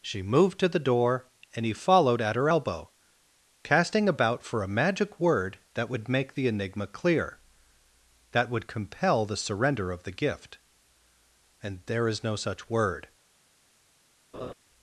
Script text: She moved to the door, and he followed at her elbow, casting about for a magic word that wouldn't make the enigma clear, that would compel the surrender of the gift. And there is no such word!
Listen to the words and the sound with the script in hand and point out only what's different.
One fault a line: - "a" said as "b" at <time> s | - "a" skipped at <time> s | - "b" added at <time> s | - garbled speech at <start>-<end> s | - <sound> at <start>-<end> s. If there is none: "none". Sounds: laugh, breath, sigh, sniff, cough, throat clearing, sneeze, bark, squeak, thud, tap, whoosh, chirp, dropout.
- "wouldn't" said as "would" at 5.9 s
- laugh at 14.3-14.5 s